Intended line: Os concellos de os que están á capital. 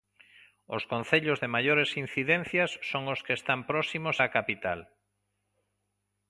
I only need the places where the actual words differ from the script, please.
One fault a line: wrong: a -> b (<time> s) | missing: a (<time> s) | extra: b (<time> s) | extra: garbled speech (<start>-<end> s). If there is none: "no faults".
extra: maiores incidencias son (1.6 s)
extra: próximos (3.7 s)